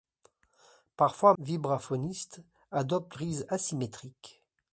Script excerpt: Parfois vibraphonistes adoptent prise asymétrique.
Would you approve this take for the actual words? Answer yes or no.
yes